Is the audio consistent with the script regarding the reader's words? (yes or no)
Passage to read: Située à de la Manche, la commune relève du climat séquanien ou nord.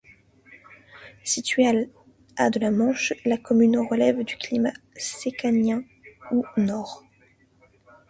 yes